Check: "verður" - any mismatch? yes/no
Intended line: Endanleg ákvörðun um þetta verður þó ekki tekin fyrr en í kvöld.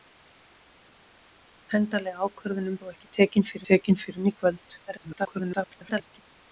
yes